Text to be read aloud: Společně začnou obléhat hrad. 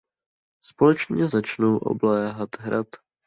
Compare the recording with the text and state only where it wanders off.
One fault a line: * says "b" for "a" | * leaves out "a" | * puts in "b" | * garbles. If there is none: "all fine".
all fine